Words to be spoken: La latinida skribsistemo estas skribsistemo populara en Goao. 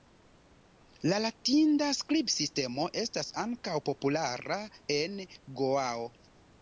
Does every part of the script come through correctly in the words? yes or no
no